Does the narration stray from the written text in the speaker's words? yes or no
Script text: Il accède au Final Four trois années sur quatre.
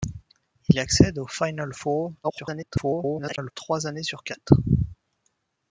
yes